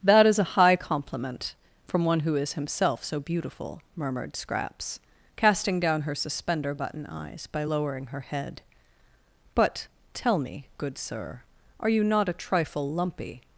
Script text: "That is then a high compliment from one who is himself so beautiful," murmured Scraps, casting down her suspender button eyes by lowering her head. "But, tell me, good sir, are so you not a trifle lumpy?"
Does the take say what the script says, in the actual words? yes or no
no